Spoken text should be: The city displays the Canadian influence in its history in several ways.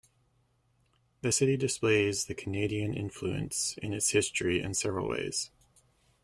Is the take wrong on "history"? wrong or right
right